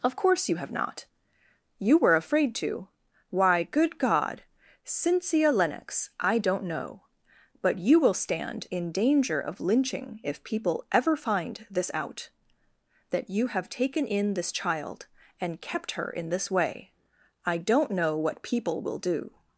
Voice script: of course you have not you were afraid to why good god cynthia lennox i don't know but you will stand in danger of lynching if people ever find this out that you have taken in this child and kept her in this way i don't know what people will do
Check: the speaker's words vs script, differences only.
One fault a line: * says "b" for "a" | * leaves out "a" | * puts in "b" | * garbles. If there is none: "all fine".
all fine